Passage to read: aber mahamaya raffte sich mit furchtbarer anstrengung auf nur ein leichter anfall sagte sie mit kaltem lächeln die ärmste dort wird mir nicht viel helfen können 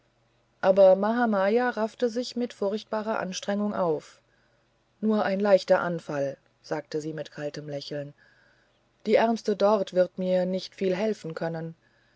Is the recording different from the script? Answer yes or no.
no